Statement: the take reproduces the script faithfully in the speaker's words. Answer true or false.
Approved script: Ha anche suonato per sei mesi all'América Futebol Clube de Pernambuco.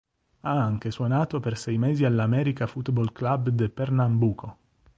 true